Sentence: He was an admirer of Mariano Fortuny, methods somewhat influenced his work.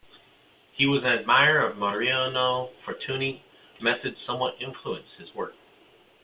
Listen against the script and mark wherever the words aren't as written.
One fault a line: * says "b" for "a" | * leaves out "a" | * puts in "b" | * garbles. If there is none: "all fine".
all fine